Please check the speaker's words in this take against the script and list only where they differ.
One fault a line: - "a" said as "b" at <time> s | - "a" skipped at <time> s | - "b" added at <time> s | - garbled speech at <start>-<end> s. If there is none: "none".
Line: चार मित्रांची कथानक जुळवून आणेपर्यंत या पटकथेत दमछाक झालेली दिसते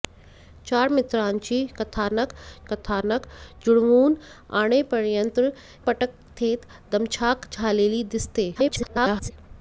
- "कथानक" added at 2.7 s
- "या" skipped at 5.4 s
- garbled speech at 8.5-9.3 s